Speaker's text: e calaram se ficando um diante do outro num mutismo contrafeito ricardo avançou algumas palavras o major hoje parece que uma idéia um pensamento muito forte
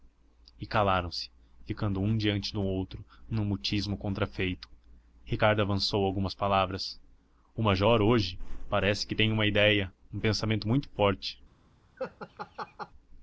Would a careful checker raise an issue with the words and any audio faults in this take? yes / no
yes